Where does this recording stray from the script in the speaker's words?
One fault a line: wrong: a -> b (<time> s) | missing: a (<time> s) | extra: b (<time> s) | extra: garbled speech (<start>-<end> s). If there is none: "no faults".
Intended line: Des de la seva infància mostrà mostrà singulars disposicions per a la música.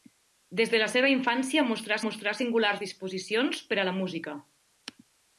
no faults